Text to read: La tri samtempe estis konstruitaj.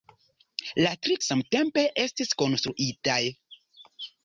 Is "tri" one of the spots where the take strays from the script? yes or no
no